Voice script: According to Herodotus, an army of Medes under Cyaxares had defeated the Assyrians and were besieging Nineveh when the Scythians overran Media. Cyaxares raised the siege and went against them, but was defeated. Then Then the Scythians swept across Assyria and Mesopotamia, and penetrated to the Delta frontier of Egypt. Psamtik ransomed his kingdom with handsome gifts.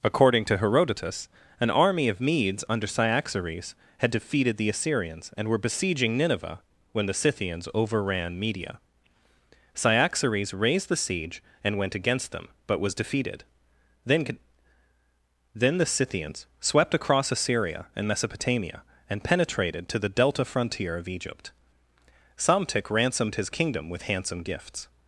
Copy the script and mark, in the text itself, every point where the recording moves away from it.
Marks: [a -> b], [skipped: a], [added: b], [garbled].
According to Herodotus, an army of Medes under Cyaxares had defeated the Assyrians and were besieging Nineveh when the Scythians overran Media. Cyaxares raised the siege and went against them, but was defeated. Then Then the Scythians swept across Assyria and Mesopotamia, and penetrated to the Delta frontier of Egypt. Psamtik ransomed his kingdom with handsome gifts.